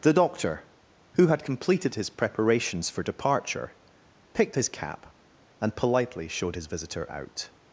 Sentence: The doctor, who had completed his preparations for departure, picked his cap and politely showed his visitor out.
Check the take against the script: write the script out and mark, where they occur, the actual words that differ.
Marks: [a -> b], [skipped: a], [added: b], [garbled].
The doctor, who had completed his preparations for departure, picked his cap and politely showed his visitor out.